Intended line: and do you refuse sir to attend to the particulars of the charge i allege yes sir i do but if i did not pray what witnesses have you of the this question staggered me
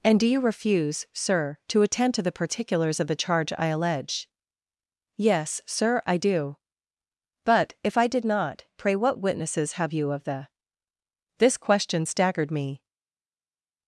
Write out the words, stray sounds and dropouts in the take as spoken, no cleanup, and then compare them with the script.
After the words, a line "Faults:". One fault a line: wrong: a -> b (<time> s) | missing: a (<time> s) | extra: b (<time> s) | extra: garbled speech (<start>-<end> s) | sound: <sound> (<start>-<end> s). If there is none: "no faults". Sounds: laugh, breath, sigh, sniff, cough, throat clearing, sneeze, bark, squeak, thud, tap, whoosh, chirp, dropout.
and do you refuse sir to attend to the particulars of the charge i allege yes sir i do but if i did not pray what witnesses have you of the this question staggered me
Faults:
no faults